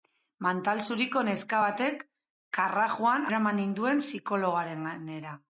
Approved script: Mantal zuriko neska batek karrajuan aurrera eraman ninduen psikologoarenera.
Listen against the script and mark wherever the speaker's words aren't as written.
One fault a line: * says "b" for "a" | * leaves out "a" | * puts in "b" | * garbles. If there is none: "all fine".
* leaves out "aurrera"